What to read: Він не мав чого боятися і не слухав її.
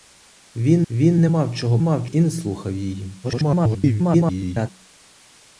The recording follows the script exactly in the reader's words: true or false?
false